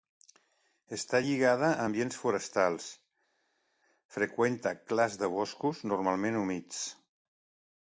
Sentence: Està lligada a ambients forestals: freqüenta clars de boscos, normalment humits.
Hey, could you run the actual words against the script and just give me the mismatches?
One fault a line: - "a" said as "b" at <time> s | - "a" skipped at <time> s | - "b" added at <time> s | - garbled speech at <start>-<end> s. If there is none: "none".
none